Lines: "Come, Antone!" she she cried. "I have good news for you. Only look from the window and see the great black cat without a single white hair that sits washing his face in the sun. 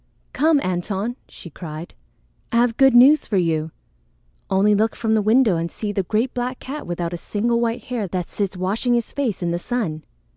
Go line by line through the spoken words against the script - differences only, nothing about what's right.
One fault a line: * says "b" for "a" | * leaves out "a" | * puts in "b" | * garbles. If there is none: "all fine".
* leaves out "she"